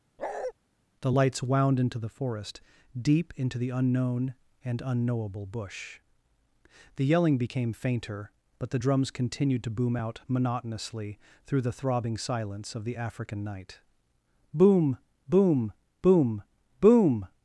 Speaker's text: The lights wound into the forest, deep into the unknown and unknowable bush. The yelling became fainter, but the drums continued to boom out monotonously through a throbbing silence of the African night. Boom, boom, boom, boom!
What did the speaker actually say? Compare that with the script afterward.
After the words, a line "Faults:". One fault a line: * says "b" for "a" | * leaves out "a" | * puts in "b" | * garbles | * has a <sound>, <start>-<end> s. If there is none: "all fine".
The lights wound into the forest, deep into the unknown and unknowable bush. The yelling became fainter, but the drums continued to boom out monotonously through the throbbing silence of the African night. Boom, boom, boom, boom!
Faults:
* has a bark, 0.2-0.5 s
* says "the" for "a"